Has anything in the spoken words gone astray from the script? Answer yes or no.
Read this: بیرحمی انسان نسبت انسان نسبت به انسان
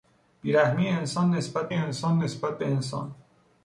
no